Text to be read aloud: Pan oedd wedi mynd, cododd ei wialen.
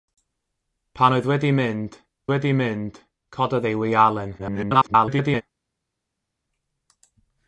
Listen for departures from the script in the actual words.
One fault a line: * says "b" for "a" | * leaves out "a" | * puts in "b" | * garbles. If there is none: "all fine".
* puts in "wedi mynd"
* garbles